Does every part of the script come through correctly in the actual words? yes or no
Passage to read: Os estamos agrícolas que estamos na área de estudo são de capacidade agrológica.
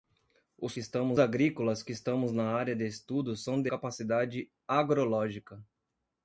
yes